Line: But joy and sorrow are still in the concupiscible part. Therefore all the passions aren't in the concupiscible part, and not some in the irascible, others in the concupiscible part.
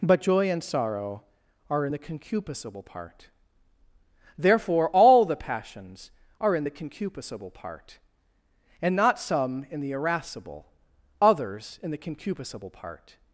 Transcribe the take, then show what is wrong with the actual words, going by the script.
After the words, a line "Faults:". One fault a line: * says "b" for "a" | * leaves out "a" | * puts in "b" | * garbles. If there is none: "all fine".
But joy and sorrow are in the concupiscible part. Therefore all the passions are in the concupiscible part, and not some in the irascible, others in the concupiscible part.
Faults:
* leaves out "still"
* says "are" for "aren't"